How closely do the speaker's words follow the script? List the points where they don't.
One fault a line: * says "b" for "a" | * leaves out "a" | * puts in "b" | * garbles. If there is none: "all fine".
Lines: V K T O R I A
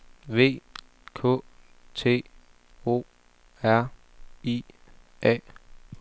all fine